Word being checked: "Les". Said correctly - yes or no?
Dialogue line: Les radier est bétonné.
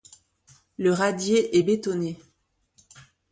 no